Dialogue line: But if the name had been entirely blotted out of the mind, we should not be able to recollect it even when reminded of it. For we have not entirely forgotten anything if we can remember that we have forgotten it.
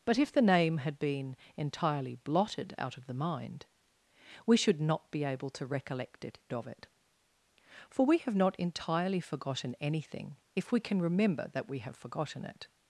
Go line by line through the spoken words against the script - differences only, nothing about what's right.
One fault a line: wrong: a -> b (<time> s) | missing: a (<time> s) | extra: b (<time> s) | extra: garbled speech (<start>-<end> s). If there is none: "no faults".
missing: even when reminded (6.4 s)